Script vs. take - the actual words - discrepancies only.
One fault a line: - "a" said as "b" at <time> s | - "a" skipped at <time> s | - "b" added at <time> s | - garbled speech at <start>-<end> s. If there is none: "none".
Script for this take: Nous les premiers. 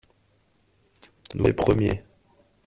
none